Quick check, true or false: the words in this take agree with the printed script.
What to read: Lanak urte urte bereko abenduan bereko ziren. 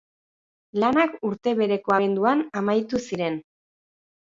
false